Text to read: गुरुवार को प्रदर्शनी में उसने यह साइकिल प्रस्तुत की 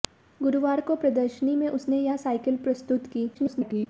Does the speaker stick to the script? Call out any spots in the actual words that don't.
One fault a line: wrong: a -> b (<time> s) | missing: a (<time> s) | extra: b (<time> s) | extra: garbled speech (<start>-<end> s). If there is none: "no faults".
extra: garbled speech (3.3-3.9 s)